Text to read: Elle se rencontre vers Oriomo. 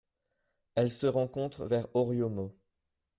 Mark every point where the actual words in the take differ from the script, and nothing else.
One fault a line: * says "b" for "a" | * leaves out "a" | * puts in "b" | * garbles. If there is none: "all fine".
all fine